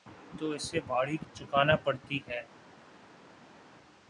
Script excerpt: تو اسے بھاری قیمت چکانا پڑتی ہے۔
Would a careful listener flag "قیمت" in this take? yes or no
yes